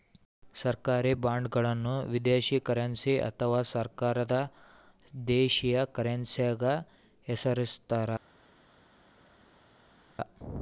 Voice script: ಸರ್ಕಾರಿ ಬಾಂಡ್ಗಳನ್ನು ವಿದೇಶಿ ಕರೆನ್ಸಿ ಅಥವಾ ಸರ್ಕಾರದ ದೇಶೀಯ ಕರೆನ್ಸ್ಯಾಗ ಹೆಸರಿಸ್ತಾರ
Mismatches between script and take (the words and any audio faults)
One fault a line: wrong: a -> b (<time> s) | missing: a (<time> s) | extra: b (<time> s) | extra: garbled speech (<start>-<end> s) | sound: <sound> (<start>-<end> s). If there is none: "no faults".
no faults